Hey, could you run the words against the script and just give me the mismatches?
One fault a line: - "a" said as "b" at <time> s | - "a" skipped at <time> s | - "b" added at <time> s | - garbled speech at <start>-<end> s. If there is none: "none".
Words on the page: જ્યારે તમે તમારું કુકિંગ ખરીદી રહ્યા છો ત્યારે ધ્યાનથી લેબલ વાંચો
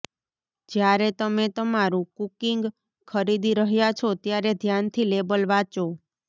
none